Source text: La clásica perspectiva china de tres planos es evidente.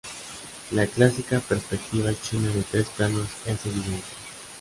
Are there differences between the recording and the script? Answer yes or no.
no